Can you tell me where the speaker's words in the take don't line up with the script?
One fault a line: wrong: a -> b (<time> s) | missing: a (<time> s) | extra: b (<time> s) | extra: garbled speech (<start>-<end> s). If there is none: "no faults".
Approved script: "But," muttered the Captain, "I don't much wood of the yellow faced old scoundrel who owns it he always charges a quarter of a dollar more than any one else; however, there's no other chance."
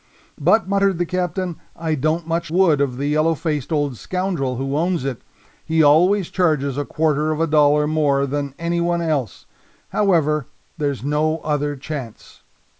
no faults